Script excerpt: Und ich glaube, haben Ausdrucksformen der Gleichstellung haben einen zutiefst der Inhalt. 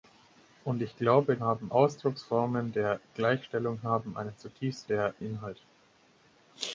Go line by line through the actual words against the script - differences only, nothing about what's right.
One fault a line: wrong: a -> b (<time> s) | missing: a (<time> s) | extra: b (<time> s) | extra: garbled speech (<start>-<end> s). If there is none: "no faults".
no faults